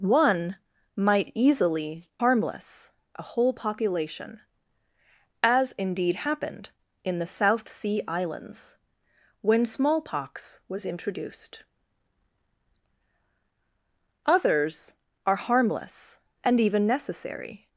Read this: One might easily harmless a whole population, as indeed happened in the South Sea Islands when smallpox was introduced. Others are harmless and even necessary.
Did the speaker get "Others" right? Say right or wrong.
right